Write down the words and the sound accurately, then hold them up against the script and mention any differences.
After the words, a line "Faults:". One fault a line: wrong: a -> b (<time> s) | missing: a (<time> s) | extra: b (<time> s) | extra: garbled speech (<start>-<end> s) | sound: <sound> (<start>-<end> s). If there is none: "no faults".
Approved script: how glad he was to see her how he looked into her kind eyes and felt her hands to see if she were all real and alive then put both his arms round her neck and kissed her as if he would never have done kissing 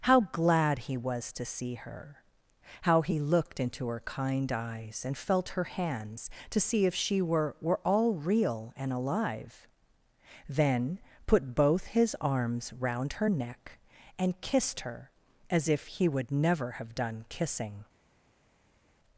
how glad he was to see her how he looked into her kind eyes and felt her hands to see if she were were all real and alive then put both his arms round her neck and kissed her as if he would never have done kissing
Faults:
extra: were (7.6 s)